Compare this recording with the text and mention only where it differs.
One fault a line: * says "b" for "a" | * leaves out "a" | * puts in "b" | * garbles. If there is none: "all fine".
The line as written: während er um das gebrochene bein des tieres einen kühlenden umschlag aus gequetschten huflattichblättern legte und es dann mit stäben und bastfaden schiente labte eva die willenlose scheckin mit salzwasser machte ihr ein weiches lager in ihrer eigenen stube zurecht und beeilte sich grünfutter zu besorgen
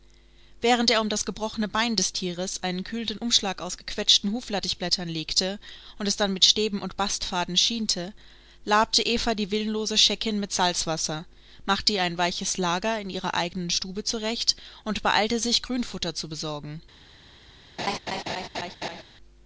all fine